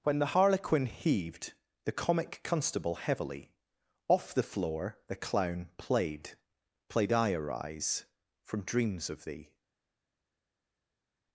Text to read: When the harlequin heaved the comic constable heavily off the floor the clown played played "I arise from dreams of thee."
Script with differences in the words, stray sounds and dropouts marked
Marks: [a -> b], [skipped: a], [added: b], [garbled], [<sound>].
When the harlequin heaved the comic constable heavily off the floor the clown played played "I arise from dreams of thee."